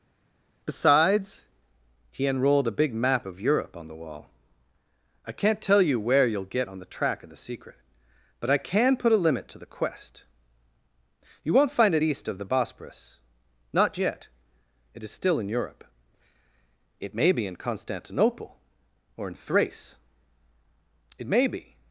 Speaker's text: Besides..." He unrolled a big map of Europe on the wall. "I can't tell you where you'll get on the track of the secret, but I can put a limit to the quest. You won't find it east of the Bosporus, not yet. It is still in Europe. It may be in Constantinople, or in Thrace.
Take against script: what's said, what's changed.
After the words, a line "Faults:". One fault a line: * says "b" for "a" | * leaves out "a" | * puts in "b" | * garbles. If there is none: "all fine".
Besides..." He unrolled a big map of Europe on the wall. "I can't tell you where you'll get on the track of the secret, but I can put a limit to the quest. You won't find it east of the Bosporus, not yet. It is still in Europe. It may be in Constantinople, or in Thrace. It may be
Faults:
* puts in "It may be"